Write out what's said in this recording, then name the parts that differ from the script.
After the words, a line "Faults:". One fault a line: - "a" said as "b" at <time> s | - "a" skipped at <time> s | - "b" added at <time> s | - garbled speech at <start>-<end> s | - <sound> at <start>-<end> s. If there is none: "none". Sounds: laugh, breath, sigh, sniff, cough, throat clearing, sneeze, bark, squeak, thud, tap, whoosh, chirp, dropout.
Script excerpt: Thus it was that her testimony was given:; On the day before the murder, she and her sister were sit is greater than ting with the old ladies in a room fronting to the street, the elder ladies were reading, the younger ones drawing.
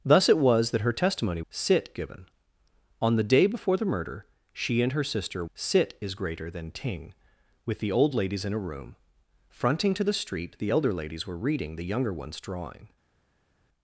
Thus it was that her testimony sit given:; On the day before the murder, she and her sister sit is greater than ting with the old ladies in a room fronting to the street, the elder ladies were reading, the younger ones drawing.
Faults:
- "was" said as "sit" at 1.5 s
- "were" skipped at 5.4 s